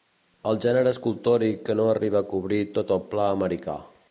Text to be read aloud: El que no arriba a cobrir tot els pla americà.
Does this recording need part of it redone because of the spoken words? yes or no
yes